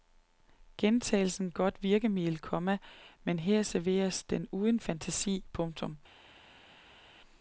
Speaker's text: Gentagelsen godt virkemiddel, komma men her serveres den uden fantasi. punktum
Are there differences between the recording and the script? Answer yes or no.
no